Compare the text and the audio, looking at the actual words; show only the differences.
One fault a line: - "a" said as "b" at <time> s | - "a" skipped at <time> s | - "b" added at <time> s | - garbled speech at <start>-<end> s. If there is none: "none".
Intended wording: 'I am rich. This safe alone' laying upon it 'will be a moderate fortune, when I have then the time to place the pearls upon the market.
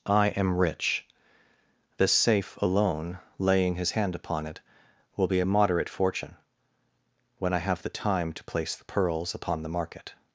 - "his hand" added at 3.7 s
- "then" skipped at 7.8 s